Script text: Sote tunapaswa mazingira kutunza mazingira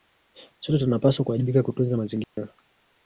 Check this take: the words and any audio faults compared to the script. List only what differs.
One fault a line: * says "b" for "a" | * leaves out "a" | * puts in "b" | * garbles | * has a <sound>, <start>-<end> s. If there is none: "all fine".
* says "kuwajibika" for "mazingira"
* has a dropout, 2.2-2.4 s